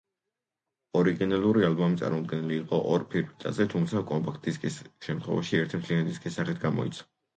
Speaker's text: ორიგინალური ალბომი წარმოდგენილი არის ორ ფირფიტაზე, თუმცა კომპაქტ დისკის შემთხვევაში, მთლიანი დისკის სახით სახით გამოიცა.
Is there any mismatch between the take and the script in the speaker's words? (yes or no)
yes